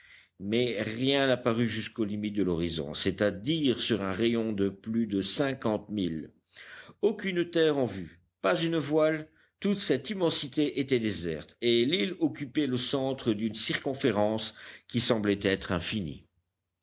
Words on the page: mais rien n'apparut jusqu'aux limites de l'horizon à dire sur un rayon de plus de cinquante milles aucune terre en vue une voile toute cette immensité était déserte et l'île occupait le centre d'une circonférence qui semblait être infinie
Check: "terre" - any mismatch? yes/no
no